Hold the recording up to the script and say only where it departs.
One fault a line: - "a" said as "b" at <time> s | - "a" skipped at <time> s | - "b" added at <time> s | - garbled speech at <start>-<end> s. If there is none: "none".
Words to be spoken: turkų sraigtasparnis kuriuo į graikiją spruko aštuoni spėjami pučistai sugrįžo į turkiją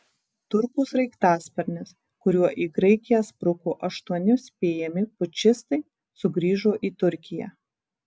none